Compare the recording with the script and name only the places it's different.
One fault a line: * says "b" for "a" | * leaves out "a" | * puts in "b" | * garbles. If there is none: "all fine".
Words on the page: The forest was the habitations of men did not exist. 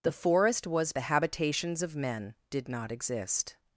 all fine